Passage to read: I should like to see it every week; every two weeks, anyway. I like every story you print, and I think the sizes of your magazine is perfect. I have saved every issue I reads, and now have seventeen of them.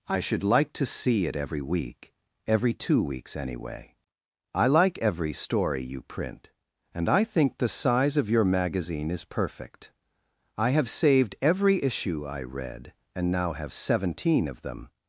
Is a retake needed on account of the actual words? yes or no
yes